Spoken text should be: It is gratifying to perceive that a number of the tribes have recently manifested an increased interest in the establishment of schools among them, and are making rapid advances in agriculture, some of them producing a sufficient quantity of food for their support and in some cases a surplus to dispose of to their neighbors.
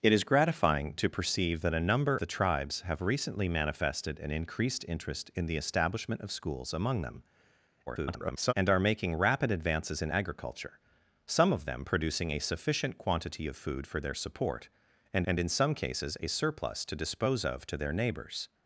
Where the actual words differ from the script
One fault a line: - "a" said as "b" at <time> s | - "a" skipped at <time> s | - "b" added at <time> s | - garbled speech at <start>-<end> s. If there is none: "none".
- "of" skipped at 2.2 s
- garbled speech at 7.9-8.5 s
- "and" added at 15.3 s